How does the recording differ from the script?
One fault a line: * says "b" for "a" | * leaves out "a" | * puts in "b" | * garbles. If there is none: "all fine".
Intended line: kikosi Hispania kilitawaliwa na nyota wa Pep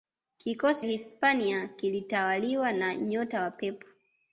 all fine